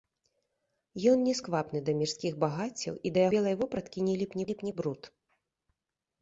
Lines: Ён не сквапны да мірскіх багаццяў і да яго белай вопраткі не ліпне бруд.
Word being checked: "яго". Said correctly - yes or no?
no